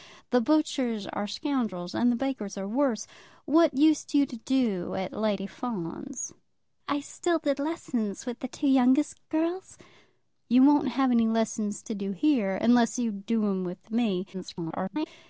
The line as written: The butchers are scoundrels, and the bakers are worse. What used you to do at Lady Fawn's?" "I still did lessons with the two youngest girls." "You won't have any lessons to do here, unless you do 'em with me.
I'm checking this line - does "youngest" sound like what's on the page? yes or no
yes